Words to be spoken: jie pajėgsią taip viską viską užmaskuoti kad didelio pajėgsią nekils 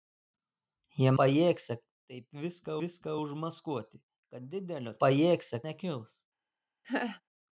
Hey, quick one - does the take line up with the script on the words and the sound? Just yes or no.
no